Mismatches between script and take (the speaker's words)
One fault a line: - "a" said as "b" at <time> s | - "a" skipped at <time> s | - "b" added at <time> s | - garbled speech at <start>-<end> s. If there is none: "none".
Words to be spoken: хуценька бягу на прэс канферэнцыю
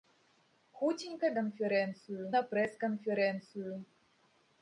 - "бягу" said as "канферэнцыю" at 1.4 s